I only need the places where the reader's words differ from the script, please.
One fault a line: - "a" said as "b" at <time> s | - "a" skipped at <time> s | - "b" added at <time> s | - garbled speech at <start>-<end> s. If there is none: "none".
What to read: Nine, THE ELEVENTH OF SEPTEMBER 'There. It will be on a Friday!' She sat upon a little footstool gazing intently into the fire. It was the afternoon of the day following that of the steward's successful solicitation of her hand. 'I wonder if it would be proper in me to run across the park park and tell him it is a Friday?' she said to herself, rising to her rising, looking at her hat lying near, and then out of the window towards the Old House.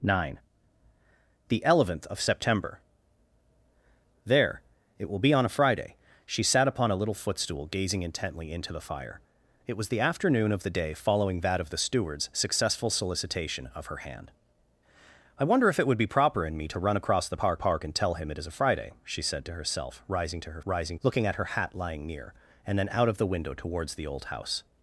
none